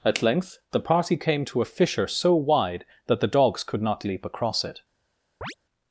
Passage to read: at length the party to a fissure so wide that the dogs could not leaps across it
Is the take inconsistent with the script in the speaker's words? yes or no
yes